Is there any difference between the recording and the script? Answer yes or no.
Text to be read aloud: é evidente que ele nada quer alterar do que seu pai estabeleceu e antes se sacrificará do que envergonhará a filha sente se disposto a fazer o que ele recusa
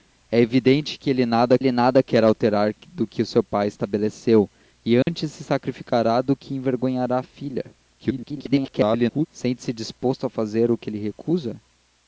yes